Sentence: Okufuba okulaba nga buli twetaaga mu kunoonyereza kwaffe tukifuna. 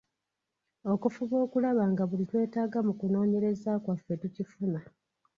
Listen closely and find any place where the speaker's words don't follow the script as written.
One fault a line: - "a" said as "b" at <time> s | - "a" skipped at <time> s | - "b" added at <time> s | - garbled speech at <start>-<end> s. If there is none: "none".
none